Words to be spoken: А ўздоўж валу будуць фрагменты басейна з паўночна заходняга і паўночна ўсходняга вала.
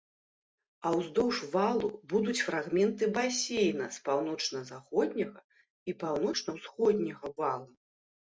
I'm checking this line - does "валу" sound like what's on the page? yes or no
yes